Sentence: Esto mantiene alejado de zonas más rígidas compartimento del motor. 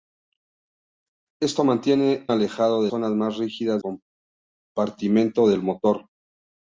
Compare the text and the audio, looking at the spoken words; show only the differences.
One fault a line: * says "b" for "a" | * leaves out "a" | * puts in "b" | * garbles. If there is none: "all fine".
all fine